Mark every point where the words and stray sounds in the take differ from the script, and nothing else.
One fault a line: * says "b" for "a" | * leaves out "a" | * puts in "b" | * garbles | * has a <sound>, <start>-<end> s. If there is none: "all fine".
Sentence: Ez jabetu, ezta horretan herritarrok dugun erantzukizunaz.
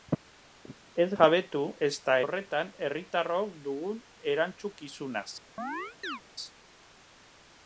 * has a chirp, 5.6-6.2 s